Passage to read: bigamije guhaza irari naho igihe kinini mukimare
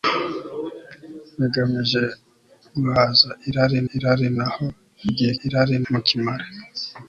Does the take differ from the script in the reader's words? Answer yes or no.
yes